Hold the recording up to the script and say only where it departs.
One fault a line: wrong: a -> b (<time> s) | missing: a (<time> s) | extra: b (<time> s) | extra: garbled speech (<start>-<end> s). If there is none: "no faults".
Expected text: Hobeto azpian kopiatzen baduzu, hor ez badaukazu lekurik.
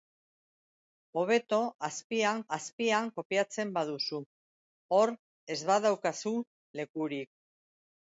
extra: azpian (2.6 s)